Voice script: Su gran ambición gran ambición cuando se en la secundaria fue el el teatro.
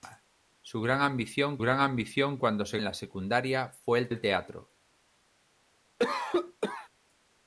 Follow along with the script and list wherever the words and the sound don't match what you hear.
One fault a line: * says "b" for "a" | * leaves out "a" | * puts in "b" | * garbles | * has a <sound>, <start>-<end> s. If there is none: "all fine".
* has a cough, 6.0-6.9 s